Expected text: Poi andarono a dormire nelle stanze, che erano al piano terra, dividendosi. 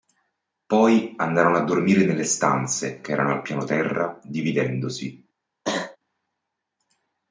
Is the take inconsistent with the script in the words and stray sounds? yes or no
yes